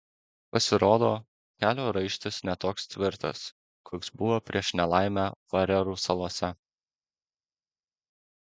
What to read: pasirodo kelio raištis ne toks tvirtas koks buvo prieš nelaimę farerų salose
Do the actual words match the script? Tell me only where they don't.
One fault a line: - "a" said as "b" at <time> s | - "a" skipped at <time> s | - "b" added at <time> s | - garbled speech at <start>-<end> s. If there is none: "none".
none